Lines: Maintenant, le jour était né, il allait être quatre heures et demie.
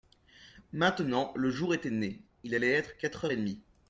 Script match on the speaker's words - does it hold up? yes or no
yes